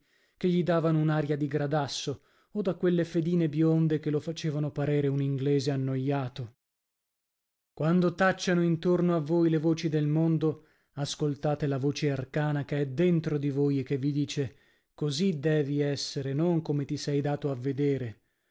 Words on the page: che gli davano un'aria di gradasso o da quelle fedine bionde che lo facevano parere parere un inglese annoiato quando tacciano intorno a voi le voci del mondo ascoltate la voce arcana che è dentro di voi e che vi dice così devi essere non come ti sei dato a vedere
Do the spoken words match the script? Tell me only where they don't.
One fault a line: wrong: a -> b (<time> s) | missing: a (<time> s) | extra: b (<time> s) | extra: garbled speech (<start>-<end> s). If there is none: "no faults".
missing: parere (5.1 s)